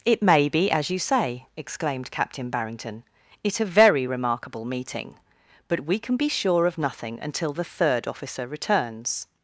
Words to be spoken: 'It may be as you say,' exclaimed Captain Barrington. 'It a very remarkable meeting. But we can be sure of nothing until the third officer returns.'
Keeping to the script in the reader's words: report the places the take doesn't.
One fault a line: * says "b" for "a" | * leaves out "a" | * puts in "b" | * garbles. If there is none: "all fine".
all fine